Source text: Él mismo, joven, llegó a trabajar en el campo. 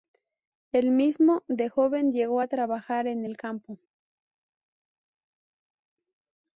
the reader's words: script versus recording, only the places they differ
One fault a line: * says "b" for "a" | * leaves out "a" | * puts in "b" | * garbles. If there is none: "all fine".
* puts in "de"